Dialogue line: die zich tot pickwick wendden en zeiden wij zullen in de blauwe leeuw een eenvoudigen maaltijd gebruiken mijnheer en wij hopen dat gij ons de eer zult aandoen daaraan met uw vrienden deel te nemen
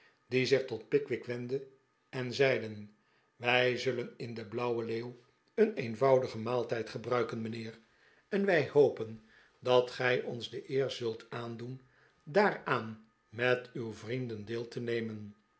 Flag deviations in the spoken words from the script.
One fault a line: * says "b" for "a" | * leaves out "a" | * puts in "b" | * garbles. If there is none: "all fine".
all fine